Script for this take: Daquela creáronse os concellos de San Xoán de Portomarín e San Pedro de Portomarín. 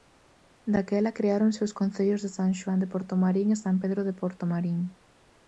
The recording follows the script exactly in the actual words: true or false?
true